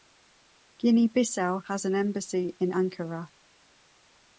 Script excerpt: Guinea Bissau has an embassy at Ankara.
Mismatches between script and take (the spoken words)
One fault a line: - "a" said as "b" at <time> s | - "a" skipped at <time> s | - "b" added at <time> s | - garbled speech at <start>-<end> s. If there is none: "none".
- "at" said as "in" at 2.6 s